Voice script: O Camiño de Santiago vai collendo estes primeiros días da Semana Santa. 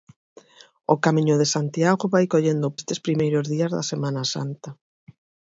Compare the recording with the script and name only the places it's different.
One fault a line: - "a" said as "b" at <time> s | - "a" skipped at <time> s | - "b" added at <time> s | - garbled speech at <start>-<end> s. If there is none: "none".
none